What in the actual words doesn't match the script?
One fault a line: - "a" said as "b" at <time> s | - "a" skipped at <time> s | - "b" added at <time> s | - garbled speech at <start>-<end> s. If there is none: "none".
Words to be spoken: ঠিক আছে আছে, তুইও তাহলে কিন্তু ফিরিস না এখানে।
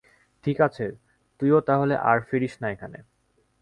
- "আছে" skipped at 0.8 s
- "কিন্তু" said as "আর" at 2.0 s